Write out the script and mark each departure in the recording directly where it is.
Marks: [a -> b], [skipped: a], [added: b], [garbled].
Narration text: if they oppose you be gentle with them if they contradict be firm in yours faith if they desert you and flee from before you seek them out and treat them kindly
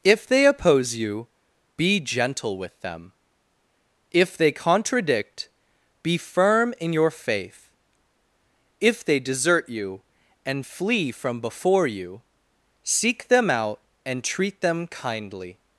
if they oppose you be gentle with them if they contradict be firm in [yours -> your] faith if they desert you and flee from before you seek them out and treat them kindly